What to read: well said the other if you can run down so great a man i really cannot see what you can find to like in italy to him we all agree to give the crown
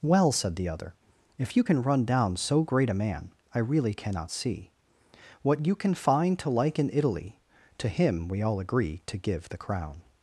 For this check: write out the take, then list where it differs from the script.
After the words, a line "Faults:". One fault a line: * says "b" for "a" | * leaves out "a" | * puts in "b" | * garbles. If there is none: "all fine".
well said the other if you can run down so great a man i really cannot see what you can find to like in italy to him we all agree to give the crown
Faults:
all fine